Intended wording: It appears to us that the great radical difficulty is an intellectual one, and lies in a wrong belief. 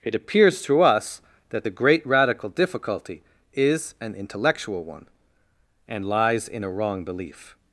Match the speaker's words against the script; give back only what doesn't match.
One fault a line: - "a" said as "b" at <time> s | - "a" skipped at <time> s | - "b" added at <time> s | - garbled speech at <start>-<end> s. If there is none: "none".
none